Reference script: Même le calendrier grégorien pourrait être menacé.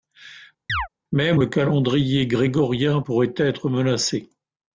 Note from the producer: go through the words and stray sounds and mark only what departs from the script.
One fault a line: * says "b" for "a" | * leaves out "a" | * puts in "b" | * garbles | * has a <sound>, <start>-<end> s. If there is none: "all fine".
* has a chirp, 0.7-0.9 s